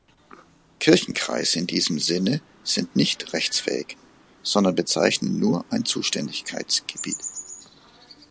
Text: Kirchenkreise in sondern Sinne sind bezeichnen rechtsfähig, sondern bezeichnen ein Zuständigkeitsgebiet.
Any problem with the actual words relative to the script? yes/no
yes